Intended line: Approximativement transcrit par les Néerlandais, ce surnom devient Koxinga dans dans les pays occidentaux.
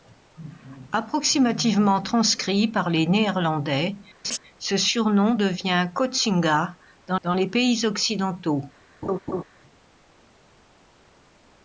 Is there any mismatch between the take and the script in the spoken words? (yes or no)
no